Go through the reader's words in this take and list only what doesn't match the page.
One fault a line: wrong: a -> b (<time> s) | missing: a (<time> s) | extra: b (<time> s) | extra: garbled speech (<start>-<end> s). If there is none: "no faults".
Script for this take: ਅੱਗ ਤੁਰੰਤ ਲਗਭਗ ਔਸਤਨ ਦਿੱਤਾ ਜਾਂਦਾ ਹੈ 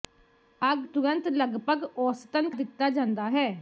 no faults